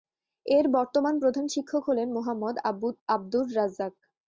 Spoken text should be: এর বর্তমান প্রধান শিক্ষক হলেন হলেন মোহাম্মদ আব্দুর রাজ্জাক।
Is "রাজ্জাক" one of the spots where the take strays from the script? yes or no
no